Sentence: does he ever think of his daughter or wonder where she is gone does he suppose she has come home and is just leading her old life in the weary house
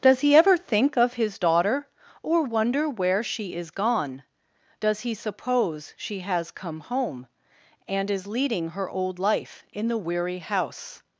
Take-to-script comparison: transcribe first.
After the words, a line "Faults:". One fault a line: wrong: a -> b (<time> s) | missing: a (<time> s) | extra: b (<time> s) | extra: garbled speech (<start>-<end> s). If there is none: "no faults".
does he ever think of his daughter or wonder where she is gone does he suppose she has come home and is leading her old life in the weary house
Faults:
missing: just (8.3 s)